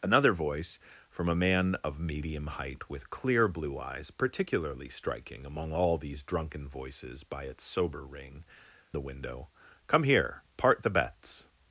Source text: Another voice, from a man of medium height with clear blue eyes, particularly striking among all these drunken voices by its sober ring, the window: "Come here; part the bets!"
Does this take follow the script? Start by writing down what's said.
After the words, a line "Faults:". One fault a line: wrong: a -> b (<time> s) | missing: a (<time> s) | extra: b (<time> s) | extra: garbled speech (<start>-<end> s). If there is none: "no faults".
Another voice, from a man of medium height with clear blue eyes, particularly striking among all these drunken voices by its sober ring, the window: "Come here; part the bets!"
Faults:
no faults